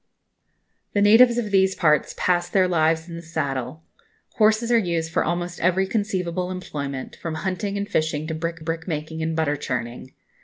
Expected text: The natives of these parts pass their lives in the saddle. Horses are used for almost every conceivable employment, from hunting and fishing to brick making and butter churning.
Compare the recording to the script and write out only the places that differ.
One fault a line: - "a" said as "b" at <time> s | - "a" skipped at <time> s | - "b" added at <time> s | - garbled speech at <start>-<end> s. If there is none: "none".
- "brick" added at 8.6 s